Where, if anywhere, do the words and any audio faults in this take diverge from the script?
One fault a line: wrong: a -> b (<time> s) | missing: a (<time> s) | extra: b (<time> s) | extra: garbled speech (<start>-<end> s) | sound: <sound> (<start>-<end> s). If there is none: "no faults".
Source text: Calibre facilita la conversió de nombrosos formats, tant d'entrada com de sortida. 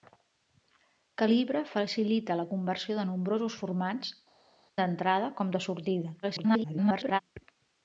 missing: tant (4.2 s)
extra: garbled speech (6.2-7.2 s)